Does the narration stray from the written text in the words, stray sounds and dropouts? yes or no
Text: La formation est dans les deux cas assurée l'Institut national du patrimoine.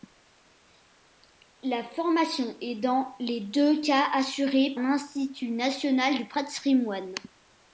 no